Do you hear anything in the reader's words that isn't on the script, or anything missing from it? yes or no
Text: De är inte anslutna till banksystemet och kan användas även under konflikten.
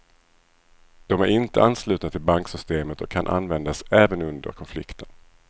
no